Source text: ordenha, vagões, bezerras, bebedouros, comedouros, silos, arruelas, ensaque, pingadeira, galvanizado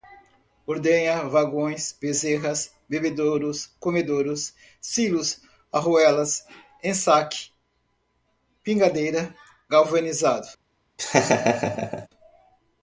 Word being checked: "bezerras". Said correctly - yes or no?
yes